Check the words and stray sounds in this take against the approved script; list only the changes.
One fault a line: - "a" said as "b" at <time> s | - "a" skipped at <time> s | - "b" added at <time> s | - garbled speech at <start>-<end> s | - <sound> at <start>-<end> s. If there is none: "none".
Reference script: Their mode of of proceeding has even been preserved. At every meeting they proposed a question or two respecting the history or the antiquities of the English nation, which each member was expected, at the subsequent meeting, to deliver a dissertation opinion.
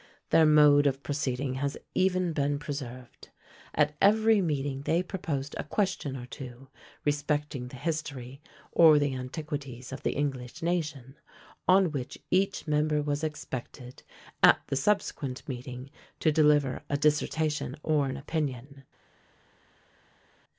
- "of" skipped at 1.0 s
- "on" added at 11.7 s
- "or an" added at 17.8 s